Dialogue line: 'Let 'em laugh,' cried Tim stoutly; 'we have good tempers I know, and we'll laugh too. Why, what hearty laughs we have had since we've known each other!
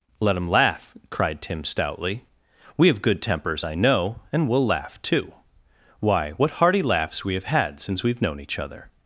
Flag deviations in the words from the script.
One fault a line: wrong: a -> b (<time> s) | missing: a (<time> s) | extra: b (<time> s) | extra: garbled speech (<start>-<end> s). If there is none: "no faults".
no faults